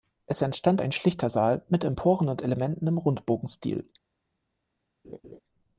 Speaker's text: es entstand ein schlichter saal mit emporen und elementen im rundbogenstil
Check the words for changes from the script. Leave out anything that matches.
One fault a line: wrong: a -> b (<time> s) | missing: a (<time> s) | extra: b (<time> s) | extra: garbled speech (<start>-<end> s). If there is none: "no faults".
no faults